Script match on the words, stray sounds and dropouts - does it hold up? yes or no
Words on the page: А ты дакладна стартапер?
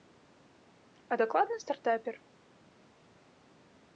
no